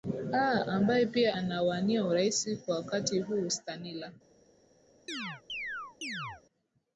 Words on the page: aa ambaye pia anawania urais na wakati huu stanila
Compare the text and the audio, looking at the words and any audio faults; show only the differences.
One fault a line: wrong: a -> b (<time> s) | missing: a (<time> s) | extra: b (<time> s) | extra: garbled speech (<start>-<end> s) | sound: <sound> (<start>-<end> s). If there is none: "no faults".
wrong: na -> kwa (2.7 s)
sound: chirp (5.1-6.4 s)